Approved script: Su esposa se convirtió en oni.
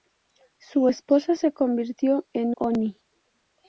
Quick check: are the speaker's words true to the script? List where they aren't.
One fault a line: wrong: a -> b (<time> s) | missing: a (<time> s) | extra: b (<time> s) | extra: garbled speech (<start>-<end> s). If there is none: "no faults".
no faults